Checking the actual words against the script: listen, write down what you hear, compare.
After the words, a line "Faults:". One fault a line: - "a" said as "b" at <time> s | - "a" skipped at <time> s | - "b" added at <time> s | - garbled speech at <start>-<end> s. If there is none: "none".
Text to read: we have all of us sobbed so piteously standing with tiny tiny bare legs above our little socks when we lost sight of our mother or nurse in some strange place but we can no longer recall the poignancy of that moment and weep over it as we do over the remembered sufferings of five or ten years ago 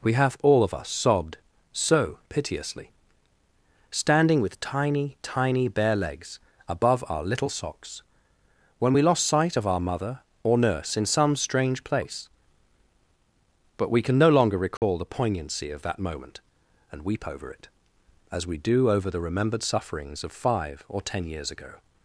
we have all of us sobbed so piteously standing with tiny tiny bare legs above our little socks when we lost sight of our mother or nurse in some strange place but we can no longer recall the poignancy of that moment and weep over it as we do over the remembered sufferings of five or ten years ago
Faults:
none